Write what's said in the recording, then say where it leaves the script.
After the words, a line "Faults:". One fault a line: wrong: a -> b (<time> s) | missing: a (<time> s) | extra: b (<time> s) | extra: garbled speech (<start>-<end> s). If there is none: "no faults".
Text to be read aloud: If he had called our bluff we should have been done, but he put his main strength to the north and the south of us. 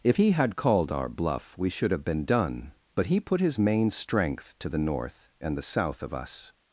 If he had called our bluff we should have been done, but he put his main strength to the north and the south of us.
Faults:
no faults